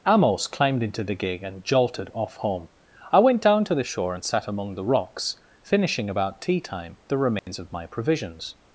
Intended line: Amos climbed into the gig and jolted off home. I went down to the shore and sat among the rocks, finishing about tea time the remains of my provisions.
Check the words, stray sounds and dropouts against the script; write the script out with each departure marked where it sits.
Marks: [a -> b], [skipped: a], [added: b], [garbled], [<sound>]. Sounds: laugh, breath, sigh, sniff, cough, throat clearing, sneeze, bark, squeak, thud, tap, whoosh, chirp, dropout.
Amos climbed into the gig and jolted off home. I went down to the shore and sat among the rocks, finishing about tea time the remains [dropout] of my provisions.